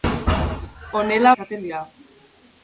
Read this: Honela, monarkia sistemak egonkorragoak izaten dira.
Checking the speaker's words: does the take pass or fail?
fail